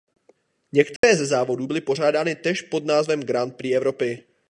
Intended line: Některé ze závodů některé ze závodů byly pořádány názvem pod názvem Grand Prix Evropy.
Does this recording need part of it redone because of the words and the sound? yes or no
yes